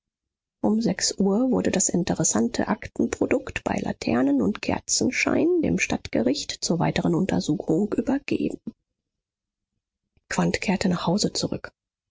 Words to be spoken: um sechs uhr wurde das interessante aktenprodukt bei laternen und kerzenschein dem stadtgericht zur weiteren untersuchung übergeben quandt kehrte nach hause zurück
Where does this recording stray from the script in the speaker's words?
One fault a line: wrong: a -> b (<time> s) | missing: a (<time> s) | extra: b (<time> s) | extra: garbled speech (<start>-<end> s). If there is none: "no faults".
no faults